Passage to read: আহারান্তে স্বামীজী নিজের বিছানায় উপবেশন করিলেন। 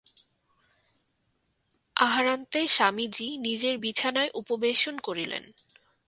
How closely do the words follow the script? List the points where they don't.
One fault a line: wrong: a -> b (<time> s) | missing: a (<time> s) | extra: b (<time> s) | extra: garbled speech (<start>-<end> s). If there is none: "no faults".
no faults